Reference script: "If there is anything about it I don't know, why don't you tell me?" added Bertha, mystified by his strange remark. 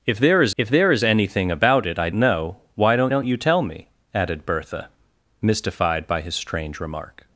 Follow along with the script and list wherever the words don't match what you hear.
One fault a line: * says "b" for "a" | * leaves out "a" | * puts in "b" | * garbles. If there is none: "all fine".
* puts in "if there is"
* leaves out "don't"
* puts in "don't"